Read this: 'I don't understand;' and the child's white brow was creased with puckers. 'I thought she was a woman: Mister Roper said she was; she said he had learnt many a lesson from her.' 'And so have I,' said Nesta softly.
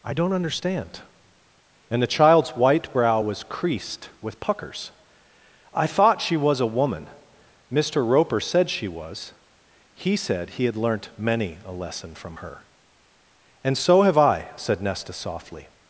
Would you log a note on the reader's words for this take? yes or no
yes